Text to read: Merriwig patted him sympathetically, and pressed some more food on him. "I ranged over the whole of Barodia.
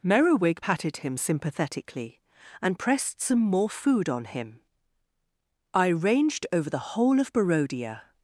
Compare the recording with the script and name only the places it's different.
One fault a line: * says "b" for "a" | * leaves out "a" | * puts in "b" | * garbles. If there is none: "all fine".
all fine